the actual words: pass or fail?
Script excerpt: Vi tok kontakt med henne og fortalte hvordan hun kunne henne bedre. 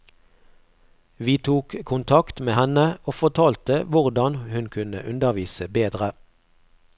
fail